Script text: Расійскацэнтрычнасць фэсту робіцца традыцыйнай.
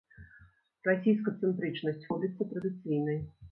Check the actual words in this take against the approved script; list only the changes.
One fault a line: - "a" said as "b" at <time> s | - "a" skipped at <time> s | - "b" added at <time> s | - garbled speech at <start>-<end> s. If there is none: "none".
- "фэсту" skipped at 2.1 s